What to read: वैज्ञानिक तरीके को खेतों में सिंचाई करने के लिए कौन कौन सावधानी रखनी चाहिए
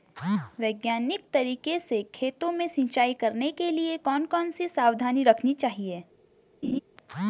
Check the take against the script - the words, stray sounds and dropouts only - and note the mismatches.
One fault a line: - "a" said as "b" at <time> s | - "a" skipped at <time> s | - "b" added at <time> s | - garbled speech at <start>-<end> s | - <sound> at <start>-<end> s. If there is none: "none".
- "को" said as "से" at 1.8 s
- "सी" added at 4.5 s
- laugh at 6.6-6.8 s